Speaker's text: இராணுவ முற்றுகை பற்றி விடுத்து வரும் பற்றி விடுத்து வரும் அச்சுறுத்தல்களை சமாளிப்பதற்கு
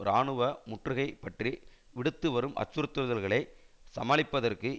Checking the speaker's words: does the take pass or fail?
fail